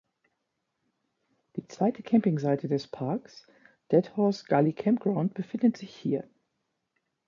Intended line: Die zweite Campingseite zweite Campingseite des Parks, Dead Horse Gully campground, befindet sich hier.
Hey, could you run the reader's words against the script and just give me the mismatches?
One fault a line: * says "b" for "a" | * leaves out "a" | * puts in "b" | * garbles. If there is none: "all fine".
* leaves out "zweite Campingseite"